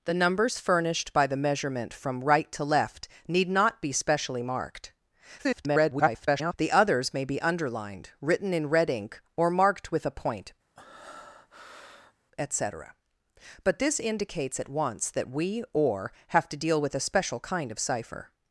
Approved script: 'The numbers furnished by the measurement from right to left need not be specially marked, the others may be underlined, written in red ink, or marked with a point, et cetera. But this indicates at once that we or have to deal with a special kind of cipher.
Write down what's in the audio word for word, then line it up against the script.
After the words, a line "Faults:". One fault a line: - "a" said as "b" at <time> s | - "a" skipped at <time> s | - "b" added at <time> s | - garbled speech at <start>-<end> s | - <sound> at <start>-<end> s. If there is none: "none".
'The numbers furnished by the measurement from right to left need not be specially marked, [garbled] the others may be underlined, written in red ink, or marked with a point, et cetera. But this indicates at once that we or have to deal with a special kind of cipher.
Faults:
- garbled speech at 5.4-6.5 s
- breath at 10.8-12.1 s